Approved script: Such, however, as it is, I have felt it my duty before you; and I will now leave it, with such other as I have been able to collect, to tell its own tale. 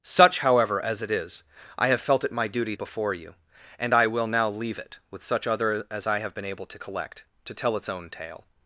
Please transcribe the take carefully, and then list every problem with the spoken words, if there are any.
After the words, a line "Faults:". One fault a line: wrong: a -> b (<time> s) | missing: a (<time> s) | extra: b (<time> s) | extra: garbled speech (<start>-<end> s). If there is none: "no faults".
Such, however, as it is, I have felt it my duty before you; and I will now leave it, with such other as I have been able to collect, to tell its own tale.
Faults:
no faults